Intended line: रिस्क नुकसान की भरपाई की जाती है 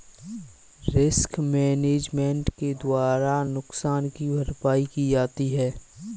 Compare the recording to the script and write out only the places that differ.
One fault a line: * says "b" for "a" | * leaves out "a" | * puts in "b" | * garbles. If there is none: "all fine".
* puts in "मैनेजमेंट के द्वारा"